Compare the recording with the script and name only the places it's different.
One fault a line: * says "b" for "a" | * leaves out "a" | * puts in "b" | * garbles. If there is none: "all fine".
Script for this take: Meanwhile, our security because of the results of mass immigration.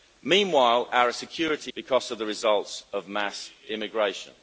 all fine